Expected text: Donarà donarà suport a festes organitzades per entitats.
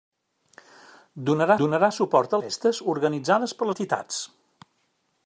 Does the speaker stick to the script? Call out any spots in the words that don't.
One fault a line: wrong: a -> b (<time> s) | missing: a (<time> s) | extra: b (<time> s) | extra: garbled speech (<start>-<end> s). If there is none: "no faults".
no faults